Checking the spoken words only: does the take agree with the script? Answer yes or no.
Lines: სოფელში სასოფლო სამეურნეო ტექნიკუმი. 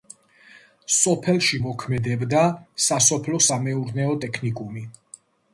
no